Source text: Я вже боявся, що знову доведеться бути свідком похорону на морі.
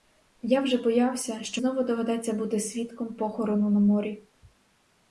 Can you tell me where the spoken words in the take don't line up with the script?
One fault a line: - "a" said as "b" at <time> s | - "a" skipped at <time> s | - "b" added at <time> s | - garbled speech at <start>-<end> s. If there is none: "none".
none